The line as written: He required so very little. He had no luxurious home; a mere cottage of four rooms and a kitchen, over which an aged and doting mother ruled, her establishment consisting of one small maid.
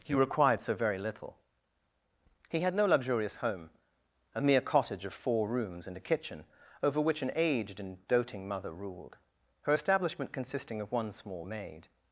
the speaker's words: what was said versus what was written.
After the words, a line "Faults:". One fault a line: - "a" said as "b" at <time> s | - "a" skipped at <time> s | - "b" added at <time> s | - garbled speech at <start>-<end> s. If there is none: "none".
He required so very little. He had no luxurious home; a mere cottage of four rooms and a kitchen, over which an aged and doting mother ruled, her establishment consisting of one small maid.
Faults:
none